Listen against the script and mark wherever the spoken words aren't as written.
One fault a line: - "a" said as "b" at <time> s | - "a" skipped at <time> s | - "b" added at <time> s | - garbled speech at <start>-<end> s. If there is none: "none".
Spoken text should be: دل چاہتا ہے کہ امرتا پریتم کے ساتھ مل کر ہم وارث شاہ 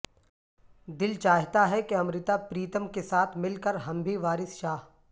- "بھی" added at 4.0 s